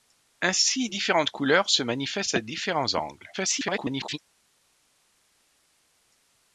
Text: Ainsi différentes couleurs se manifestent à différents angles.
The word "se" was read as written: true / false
true